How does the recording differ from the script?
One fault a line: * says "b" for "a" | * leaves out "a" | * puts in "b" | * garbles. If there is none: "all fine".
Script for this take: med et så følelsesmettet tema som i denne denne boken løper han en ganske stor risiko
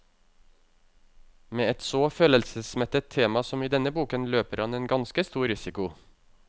* leaves out "denne"